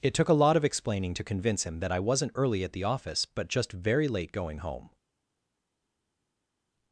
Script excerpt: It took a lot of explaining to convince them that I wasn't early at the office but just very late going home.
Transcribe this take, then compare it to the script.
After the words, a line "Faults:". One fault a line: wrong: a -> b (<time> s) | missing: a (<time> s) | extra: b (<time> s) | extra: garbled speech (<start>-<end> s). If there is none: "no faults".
It took a lot of explaining to convince him that I wasn't early at the office but just very late going home.
Faults:
wrong: them -> him (1.6 s)